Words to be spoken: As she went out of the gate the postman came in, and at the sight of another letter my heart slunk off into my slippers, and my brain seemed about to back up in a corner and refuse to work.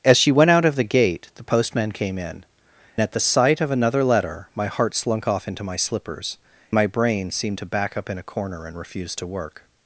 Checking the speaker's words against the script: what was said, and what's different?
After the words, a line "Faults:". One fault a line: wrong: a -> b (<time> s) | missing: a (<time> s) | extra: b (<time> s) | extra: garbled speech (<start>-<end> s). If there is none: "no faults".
As she went out of the gate the postman came in, at the sight of another letter my heart slunk off into my slippers, my brain seemed to back up in a corner and refuse to work.
Faults:
missing: and (2.4 s)
missing: and (6.4 s)
missing: about (7.6 s)